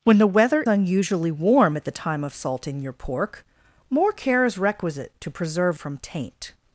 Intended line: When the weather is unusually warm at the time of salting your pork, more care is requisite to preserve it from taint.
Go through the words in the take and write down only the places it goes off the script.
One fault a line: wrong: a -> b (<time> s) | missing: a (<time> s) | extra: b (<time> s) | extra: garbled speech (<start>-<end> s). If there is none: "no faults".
missing: is (0.6 s)
missing: it (5.8 s)